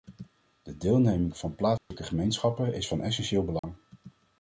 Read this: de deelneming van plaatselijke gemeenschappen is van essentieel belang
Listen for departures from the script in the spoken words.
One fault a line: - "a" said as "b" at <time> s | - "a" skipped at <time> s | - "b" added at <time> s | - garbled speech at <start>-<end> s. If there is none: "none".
none